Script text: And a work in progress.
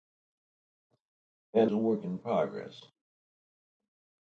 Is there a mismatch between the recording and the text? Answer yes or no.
no